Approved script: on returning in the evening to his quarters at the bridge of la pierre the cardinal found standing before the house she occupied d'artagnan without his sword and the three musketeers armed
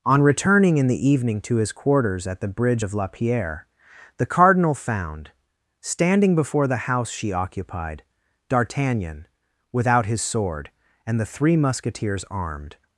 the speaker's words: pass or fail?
pass